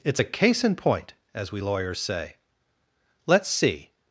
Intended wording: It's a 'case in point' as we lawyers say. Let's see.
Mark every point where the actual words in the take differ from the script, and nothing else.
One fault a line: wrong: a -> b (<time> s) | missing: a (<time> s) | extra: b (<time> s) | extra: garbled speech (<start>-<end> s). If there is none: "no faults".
no faults